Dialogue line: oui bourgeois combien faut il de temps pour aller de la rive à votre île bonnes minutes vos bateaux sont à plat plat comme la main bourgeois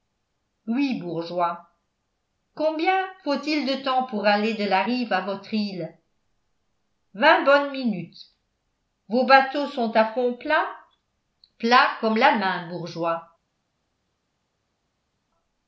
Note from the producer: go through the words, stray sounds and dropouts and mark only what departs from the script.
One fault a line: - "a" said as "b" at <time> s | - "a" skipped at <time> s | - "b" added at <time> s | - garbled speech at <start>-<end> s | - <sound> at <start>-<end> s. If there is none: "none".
- "vingt" added at 7.1 s
- "fond" added at 10.1 s